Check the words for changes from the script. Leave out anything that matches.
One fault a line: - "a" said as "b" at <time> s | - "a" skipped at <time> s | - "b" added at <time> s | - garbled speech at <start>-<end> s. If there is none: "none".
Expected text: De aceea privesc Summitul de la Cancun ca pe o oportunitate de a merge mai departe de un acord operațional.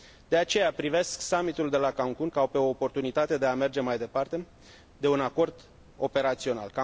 none